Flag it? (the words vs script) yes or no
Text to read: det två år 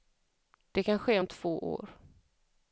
yes